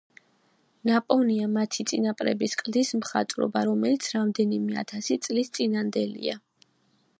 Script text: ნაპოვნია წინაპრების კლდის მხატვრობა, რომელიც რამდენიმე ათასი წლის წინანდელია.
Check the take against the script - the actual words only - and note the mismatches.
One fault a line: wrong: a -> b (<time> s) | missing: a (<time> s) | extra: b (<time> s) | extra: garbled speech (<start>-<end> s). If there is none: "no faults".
extra: მათი (1.6 s)